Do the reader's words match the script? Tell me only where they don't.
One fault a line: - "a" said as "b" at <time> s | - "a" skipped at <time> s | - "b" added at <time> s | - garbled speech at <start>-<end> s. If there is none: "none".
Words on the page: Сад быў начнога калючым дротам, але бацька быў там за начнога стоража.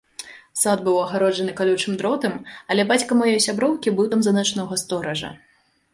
- "начнога" said as "агароджаны" at 1.0 s
- "маёй сяброўкі" added at 3.2 s